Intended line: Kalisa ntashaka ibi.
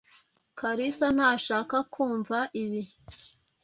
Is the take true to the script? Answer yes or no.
no